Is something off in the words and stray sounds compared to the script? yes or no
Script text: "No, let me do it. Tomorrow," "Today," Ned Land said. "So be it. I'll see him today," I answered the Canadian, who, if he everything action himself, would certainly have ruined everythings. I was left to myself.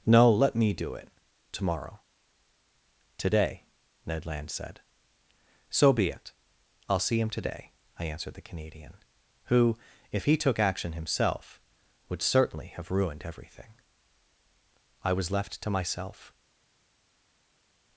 yes